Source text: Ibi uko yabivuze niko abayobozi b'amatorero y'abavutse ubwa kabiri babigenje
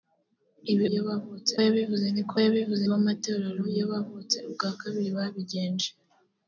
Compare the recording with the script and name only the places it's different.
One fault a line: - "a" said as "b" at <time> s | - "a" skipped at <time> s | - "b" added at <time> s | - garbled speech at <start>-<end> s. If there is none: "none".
- "uko" said as "y'abavutse" at 0.9 s
- "abayobozi" said as "yabivuze" at 2.4 s